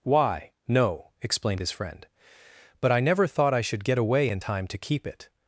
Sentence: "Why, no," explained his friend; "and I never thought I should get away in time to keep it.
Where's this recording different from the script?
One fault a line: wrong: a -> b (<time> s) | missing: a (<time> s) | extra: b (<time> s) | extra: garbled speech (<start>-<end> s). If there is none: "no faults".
wrong: and -> but (2.8 s)